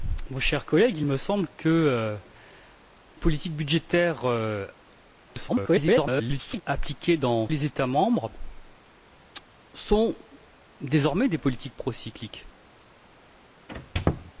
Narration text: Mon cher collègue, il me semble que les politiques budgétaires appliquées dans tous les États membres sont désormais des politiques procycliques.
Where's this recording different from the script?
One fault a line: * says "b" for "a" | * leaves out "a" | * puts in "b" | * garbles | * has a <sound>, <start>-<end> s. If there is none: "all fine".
* leaves out "les"
* garbles
* leaves out "tous"
* has a squeak, 13.7-14.3 s